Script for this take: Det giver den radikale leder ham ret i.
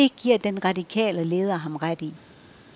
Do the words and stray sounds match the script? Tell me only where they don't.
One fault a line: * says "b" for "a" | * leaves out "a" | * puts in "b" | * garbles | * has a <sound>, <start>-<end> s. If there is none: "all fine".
all fine